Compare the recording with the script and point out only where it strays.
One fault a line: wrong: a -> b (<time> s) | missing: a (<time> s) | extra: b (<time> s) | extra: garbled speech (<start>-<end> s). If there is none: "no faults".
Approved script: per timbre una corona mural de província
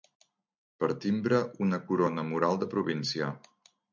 no faults